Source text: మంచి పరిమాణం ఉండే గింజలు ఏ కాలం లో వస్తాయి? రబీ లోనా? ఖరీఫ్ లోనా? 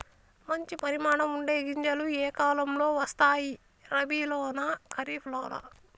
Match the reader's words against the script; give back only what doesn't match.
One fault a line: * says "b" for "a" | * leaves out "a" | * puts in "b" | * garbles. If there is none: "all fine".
all fine